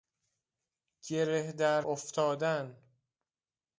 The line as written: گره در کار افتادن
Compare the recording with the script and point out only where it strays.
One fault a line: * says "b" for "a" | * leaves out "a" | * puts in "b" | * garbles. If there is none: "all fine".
* leaves out "کار"